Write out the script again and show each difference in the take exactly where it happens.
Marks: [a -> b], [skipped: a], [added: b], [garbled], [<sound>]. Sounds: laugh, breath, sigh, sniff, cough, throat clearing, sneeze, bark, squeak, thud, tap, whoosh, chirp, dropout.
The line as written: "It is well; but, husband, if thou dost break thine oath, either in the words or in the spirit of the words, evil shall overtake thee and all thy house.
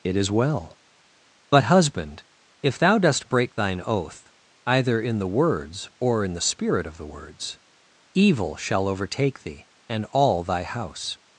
"It is well; but, husband, if thou dost break thine oath, either in the words or in the spirit of the words, evil shall overtake thee and all thy house.